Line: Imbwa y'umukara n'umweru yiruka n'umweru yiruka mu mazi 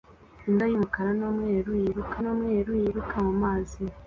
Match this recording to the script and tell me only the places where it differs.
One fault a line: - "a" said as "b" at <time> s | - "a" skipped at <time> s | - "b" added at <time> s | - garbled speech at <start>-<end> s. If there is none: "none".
none